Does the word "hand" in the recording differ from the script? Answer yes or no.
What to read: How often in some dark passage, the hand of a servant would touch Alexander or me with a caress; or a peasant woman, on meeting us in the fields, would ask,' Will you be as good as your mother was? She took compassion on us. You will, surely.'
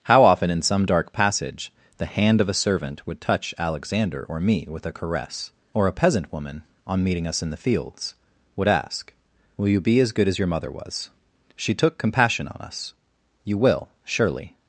no